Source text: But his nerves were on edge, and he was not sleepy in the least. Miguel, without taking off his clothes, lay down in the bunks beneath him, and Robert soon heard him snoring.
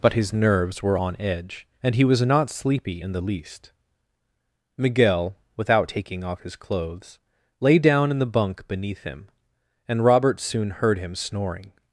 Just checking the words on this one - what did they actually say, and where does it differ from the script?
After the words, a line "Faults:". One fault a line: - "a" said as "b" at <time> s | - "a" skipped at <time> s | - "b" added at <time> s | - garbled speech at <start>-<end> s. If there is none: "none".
But his nerves were on edge, and he was not sleepy in the least. Miguel, without taking off his clothes, lay down in the bunk beneath him, and Robert soon heard him snoring.
Faults:
- "bunks" said as "bunk" at 8.3 s